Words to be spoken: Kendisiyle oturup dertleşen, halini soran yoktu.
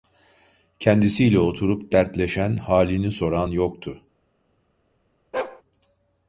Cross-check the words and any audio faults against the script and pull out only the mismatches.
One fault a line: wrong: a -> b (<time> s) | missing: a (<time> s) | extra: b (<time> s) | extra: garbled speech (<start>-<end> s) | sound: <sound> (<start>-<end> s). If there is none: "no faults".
sound: bark (5.3-5.6 s)